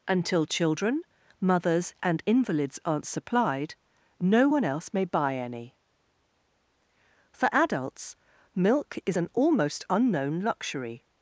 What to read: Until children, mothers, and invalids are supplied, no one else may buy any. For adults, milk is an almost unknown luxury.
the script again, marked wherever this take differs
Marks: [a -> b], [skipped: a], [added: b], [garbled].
Until children, mothers, and invalids [are -> aren't] supplied, no one else may buy any. For adults, milk is an almost unknown luxury.